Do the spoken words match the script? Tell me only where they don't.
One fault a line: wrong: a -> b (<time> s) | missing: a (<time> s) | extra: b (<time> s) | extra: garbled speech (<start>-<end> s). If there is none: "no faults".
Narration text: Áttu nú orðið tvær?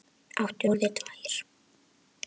missing: nú (0.7 s)